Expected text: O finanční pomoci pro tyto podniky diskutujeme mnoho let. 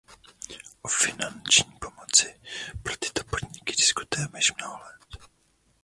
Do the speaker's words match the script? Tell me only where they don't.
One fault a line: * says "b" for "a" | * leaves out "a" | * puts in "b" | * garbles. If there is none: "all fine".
* puts in "již"